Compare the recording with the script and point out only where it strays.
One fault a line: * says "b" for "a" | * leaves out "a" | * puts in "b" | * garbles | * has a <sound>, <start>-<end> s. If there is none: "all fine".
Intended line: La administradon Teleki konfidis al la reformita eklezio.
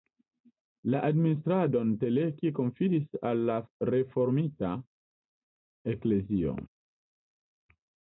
all fine